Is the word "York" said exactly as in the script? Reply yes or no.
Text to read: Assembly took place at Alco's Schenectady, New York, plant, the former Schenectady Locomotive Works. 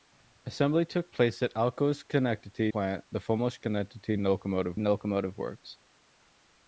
no